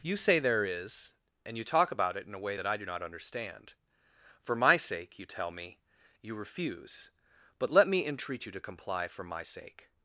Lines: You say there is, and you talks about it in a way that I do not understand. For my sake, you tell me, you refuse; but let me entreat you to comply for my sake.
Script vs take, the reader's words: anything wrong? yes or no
yes